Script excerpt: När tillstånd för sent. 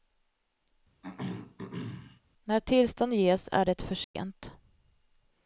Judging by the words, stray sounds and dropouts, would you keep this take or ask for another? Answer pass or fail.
fail